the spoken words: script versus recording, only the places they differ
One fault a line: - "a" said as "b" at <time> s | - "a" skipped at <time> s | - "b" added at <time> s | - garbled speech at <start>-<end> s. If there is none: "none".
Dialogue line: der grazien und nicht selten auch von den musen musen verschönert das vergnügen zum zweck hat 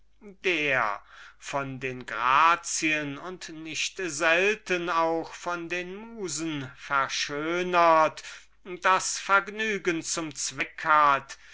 - "von den" added at 1.4 s
- "musen" skipped at 6.7 s